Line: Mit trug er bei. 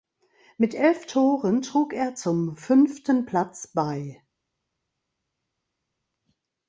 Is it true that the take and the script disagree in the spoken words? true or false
true